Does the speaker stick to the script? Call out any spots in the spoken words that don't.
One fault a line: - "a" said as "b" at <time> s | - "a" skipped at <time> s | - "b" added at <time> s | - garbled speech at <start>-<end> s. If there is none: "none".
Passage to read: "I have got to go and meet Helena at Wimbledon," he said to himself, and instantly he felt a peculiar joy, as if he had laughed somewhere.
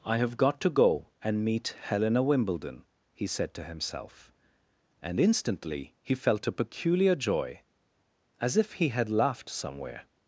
- "at" skipped at 2.2 s